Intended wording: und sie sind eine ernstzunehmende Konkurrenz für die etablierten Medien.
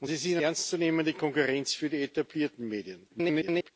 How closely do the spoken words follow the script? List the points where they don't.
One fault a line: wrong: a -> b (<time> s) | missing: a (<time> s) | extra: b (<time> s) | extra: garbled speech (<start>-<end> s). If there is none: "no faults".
missing: eine (0.4 s)
extra: garbled speech (3.1-3.7 s)